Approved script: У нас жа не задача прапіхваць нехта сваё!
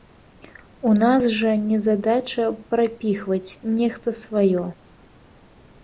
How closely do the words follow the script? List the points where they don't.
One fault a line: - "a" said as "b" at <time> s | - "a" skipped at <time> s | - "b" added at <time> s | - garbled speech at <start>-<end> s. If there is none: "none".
none